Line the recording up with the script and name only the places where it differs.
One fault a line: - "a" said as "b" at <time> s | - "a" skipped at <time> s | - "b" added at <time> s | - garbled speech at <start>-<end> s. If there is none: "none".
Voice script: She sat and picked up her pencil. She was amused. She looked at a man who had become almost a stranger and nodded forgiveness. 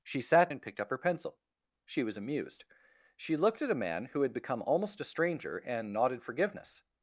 none